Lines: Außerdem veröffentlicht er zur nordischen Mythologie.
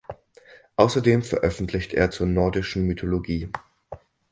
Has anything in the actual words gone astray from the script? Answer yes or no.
no